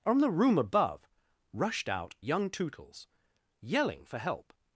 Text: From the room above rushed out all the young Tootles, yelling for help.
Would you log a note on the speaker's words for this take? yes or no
yes